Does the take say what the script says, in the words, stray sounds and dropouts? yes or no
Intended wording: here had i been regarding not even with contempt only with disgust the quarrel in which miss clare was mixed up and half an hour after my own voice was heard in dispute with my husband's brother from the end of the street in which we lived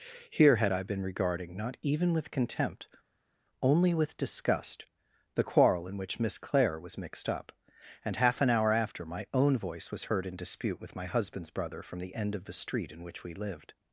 yes